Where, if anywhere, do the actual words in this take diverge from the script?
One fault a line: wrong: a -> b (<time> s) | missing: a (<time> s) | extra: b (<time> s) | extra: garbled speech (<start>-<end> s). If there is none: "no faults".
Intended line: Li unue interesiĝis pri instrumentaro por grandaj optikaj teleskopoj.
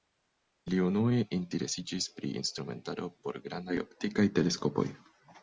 no faults